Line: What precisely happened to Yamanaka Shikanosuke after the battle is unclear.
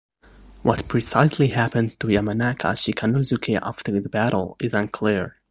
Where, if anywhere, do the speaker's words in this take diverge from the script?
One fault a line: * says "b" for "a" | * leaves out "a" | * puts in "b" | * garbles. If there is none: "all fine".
all fine